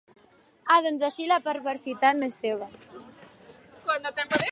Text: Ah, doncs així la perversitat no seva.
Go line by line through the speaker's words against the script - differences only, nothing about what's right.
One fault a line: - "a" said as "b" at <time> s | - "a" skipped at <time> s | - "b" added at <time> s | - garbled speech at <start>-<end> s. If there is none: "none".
- "és" added at 2.3 s